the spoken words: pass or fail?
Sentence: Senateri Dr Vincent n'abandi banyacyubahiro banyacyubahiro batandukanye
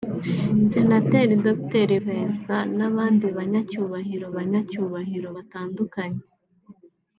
pass